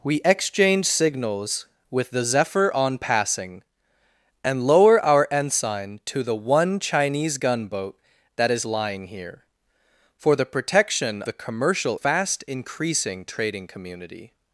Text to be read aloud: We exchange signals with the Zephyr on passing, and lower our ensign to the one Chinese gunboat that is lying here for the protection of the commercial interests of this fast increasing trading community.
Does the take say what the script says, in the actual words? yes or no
no